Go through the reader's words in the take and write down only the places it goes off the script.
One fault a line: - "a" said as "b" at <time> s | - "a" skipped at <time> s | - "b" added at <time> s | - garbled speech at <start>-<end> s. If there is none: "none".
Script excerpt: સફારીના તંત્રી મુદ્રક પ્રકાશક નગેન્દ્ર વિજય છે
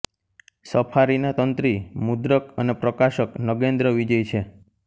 - "અને" added at 2.6 s